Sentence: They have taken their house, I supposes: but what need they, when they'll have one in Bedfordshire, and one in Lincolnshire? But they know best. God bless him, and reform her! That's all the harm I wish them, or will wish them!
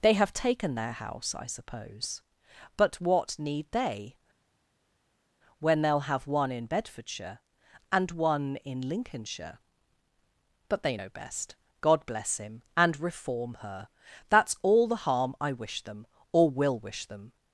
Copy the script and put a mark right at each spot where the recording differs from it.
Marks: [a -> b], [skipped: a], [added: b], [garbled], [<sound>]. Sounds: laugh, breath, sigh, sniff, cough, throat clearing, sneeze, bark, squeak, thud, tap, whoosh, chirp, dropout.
They have taken their house, I [supposes: -> suppose] but what need they, when they'll have one in Bedfordshire, and one in Lincolnshire? But they know best. God bless him, and reform her! That's all the harm I wish them, or will wish them!